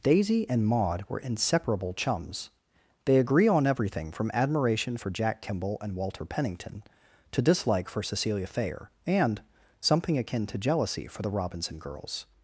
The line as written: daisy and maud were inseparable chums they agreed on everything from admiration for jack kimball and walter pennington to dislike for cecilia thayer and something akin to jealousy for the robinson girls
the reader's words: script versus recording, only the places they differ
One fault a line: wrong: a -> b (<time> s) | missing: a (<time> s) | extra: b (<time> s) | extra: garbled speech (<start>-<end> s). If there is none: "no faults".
wrong: agreed -> agree (3.2 s)